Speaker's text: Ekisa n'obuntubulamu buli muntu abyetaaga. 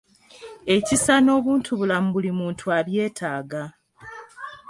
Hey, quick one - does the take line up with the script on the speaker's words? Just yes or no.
yes